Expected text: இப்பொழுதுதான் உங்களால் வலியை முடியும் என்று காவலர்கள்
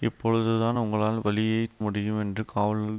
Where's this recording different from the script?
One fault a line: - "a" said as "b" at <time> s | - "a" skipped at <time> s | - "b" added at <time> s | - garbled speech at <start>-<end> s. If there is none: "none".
none